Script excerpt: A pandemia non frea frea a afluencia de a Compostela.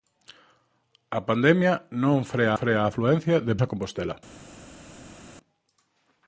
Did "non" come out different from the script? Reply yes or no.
no